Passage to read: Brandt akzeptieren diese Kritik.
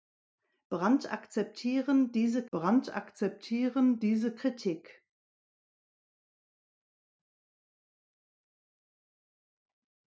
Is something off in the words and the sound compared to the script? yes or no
yes